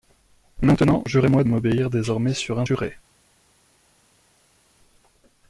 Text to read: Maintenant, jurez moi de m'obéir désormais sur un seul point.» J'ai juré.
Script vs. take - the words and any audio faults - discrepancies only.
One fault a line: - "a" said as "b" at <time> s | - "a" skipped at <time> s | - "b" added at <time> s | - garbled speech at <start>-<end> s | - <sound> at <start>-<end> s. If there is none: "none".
- "de" skipped at 1.4 s
- "seul point J'ai" skipped at 2.7 s